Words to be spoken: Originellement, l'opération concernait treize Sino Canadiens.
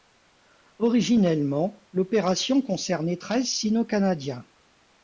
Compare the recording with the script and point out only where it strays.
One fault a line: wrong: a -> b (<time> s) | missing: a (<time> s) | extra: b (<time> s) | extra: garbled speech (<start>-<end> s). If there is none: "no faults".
no faults